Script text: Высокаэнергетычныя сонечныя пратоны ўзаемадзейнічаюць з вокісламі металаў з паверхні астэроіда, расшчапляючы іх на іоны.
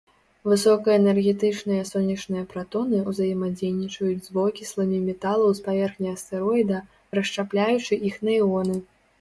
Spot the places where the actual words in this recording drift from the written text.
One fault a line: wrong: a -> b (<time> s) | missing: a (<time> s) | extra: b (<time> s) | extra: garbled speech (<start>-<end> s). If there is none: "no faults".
no faults